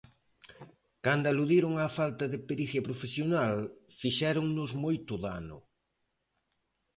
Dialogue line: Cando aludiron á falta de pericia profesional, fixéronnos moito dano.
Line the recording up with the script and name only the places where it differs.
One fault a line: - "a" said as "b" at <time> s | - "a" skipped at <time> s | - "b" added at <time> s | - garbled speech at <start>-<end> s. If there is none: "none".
none